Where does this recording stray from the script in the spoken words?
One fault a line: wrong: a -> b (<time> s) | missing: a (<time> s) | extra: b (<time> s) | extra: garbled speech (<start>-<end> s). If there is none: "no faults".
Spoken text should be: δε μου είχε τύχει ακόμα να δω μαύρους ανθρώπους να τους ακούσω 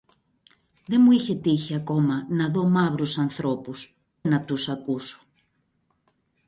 no faults